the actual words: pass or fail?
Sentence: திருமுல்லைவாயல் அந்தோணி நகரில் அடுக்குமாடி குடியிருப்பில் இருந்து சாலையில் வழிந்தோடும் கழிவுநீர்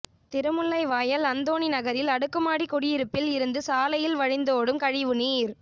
pass